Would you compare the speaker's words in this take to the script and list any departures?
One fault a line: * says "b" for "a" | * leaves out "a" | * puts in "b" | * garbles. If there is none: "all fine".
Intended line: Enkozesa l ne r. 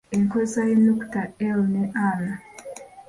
* puts in "y'Ennukuta"